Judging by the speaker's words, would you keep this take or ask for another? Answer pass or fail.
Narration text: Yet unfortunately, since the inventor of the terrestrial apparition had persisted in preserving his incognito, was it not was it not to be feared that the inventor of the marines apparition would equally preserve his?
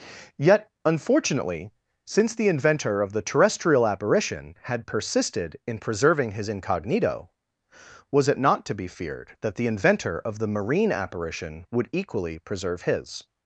fail